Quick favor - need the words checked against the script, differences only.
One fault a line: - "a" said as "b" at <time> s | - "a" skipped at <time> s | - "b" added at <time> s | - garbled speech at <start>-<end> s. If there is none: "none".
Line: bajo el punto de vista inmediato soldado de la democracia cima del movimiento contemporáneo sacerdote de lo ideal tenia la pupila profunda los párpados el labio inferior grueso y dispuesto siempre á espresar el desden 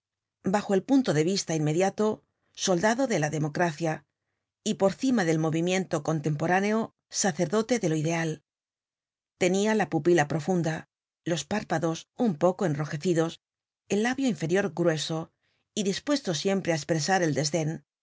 - "y por" added at 4.6 s
- "un poco enrojecidos" added at 12.2 s